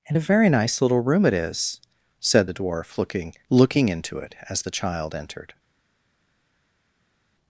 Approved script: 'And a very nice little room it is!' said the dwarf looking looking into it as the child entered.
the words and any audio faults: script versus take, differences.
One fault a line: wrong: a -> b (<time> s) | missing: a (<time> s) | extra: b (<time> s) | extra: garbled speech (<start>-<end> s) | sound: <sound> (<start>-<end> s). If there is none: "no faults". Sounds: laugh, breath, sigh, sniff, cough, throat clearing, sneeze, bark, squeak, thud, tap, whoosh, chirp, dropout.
no faults